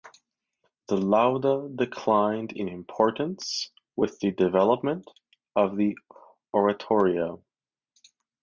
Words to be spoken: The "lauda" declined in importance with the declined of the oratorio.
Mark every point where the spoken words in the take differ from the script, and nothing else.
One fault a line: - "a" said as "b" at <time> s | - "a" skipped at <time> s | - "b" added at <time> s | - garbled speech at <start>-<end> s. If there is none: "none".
- "declined" said as "development" at 4.3 s